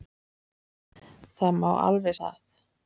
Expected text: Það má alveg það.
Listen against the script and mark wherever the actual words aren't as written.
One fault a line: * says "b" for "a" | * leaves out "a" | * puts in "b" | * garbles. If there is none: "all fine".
all fine